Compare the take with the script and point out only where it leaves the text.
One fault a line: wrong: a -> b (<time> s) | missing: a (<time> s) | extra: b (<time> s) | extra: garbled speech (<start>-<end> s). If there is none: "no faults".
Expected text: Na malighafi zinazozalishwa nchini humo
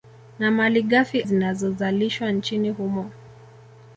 no faults